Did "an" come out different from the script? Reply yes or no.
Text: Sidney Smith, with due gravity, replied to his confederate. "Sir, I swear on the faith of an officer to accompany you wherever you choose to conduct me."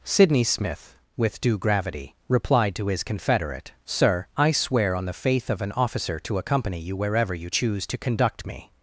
no